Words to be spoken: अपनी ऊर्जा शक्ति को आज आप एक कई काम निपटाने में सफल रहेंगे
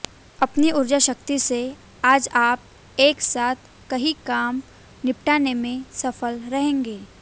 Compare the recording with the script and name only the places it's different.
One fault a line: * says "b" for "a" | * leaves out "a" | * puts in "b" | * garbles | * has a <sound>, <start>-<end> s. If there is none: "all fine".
* says "से" for "को"
* puts in "साथ"